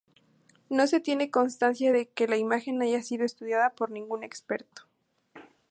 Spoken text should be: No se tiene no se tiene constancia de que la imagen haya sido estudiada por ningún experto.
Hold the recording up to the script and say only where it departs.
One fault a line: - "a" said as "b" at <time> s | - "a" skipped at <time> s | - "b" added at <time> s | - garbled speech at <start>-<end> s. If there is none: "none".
- "no se tiene" skipped at 1.3 s